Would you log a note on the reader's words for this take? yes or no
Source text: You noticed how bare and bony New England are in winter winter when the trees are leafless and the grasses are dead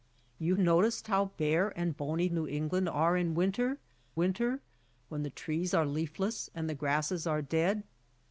no